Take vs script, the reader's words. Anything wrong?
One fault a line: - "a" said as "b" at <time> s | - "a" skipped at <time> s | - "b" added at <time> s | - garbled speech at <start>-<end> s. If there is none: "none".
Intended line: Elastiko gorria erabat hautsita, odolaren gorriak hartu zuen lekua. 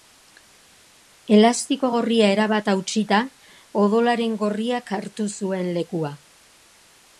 none